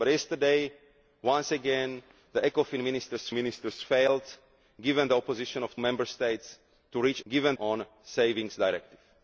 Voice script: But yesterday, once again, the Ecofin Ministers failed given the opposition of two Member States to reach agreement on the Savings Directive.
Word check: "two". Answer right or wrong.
wrong